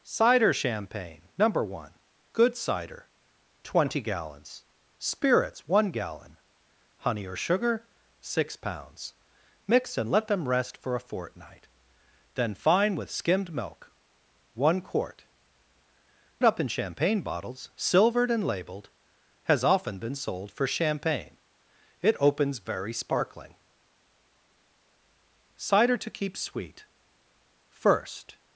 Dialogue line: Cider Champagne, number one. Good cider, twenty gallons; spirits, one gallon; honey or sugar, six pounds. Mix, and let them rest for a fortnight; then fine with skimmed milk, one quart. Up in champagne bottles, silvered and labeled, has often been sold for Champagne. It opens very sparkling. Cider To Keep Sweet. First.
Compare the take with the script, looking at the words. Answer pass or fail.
pass